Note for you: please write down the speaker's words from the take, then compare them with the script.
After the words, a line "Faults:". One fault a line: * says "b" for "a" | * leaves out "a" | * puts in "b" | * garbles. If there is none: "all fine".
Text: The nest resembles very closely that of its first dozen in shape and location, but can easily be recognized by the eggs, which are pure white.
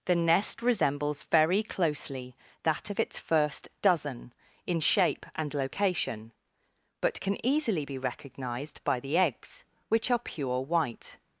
The nest resembles very closely that of its first dozen in shape and location, but can easily be recognized by the eggs, which are pure white.
Faults:
all fine